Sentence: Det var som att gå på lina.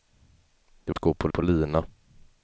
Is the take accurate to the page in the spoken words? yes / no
no